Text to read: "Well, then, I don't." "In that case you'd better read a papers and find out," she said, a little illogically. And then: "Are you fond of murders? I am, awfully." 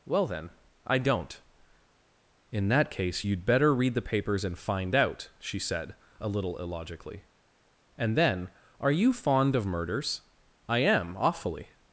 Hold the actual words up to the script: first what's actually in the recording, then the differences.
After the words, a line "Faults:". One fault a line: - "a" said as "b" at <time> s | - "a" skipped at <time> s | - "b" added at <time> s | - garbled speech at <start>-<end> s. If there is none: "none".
"Well, then, I don't." "In that case you'd better read the papers and find out," she said, a little illogically. And then: "Are you fond of murders? I am, awfully."
Faults:
- "a" said as "the" at 3.9 s